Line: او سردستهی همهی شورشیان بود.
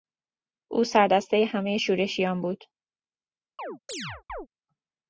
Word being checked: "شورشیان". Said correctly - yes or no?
yes